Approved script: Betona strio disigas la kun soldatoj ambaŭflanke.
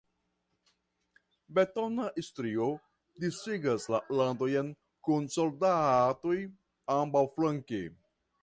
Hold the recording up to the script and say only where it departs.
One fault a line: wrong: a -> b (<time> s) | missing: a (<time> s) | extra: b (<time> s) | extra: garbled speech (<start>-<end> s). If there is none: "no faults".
extra: landojn (4.2 s)